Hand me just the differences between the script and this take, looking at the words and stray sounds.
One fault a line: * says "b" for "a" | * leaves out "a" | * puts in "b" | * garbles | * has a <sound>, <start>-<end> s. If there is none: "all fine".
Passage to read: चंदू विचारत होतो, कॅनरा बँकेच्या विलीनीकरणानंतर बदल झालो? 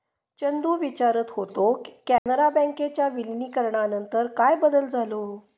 * has a dropout, 2.2-2.3 s
* puts in "काय"